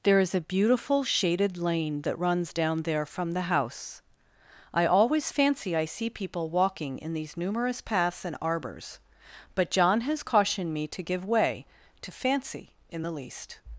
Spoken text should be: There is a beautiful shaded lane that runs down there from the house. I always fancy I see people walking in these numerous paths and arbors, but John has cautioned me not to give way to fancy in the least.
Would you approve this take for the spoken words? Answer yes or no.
no